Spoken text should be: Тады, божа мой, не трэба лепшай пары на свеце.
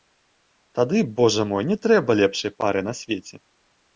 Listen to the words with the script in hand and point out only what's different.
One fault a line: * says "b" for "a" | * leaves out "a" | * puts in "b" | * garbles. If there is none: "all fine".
all fine